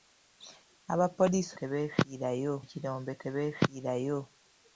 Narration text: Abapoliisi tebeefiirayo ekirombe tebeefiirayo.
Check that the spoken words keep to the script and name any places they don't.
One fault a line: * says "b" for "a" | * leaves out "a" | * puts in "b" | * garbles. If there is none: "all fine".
all fine